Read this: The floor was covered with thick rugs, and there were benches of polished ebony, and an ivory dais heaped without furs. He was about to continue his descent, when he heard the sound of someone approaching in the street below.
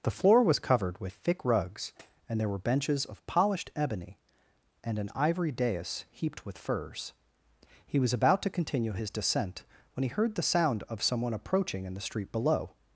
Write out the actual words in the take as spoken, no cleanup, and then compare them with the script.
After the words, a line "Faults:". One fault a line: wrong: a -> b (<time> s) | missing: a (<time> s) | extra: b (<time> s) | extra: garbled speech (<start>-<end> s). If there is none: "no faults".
The floor was covered with thick rugs, and there were benches of polished ebony, and an ivory dais heaped with furs. He was about to continue his descent, when he heard the sound of someone approaching in the street below.
Faults:
wrong: without -> with (6.4 s)